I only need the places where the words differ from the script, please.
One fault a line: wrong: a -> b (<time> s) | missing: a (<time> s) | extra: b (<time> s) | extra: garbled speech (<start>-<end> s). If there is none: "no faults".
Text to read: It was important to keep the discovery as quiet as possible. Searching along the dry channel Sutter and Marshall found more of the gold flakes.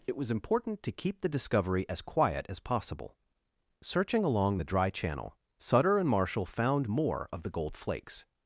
no faults